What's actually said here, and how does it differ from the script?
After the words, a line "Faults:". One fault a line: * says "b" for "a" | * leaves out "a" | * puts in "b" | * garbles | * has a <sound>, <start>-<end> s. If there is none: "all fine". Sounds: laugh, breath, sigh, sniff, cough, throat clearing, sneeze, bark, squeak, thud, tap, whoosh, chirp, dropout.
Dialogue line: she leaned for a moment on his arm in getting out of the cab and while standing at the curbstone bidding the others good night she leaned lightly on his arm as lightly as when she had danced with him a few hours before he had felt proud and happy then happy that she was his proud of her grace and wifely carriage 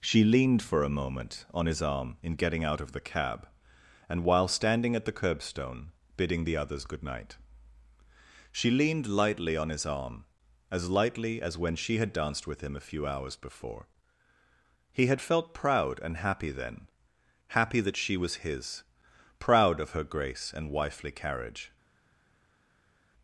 she leaned for a moment on his arm in getting out of the cab and while standing at the curbstone bidding the others good night she leaned lightly on his arm as lightly as when she had danced with him a few hours before he had felt proud and happy then happy that she was his proud of her grace and wifely carriage
Faults:
all fine